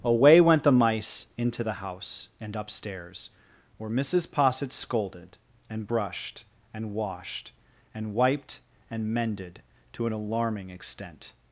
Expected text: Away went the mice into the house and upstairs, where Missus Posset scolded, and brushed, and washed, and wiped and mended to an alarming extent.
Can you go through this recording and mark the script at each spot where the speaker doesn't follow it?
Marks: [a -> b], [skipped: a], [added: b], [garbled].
Away went the mice into the house and upstairs, where Missus Posset scolded, and brushed, and washed, and wiped and mended to an alarming extent.